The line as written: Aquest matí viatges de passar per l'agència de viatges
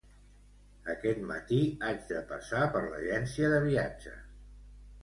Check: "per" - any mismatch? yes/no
no